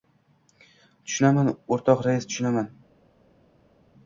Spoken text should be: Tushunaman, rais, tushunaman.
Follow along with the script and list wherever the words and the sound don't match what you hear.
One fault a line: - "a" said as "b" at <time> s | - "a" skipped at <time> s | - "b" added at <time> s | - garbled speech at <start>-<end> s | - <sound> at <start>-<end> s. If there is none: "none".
- "o‘rtoq" added at 1.8 s